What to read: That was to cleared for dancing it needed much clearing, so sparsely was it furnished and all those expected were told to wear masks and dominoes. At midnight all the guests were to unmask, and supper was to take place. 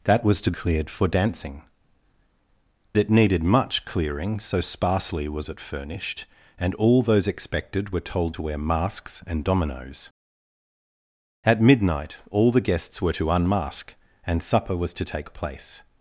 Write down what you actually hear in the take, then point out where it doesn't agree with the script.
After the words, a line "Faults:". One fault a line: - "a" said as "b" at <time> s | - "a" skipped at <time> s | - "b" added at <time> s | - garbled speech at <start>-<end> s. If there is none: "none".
That was to cleared for dancing it needed much clearing, so sparsely was it furnished and all those expected were told to wear masks and dominoes. At midnight all the guests were to unmask, and supper was to take place.
Faults:
none